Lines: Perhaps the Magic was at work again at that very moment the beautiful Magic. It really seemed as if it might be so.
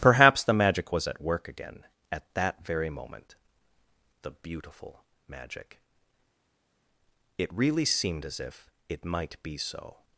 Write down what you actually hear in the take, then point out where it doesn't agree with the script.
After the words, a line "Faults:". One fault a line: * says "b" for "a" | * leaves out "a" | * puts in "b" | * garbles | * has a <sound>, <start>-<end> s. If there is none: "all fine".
Perhaps the Magic was at work again at that very moment the beautiful Magic. It really seemed as if it might be so.
Faults:
all fine